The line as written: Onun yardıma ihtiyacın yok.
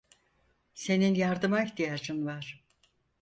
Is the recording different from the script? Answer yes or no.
yes